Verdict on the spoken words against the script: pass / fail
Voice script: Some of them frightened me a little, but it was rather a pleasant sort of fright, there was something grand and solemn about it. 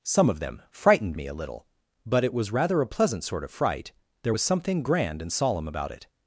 pass